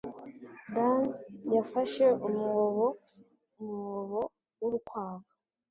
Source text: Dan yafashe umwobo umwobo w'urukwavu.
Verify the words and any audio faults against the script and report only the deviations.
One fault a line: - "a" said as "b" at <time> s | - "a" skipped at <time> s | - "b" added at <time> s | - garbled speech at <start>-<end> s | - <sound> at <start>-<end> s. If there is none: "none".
none